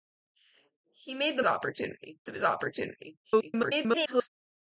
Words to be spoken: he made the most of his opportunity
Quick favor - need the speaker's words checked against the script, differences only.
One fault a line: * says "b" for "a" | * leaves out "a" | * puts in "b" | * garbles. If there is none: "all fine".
* says "opportunity" for "most"
* garbles